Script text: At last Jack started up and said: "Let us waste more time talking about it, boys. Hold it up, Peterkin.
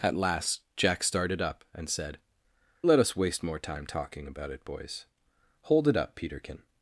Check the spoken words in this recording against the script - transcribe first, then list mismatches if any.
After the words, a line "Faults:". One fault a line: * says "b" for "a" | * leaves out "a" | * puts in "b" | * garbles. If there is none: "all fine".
At last Jack started up and said: "Let us waste more time talking about it, boys. Hold it up, Peterkin.
Faults:
all fine